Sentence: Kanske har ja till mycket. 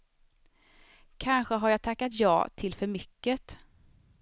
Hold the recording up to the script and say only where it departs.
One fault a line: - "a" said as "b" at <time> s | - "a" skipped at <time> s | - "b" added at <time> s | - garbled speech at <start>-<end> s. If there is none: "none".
- "jag tackat" added at 1.7 s
- "för" added at 2.7 s